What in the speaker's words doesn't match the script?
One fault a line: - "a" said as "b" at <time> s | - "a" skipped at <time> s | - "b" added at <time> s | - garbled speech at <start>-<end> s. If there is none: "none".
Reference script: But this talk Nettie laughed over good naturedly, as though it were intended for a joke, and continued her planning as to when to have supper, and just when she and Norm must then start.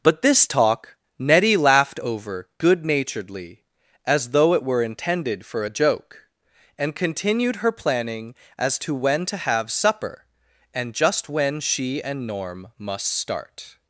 - "then" skipped at 13.1 s